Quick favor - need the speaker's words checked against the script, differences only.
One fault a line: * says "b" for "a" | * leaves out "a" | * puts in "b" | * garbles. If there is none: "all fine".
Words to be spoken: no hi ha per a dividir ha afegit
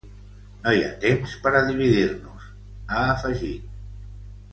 * puts in "temps"
* puts in "nos"